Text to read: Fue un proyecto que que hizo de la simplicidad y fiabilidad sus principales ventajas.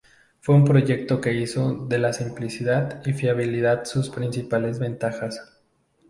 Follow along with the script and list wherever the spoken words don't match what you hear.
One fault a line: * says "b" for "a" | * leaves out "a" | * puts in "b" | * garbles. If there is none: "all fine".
* leaves out "que"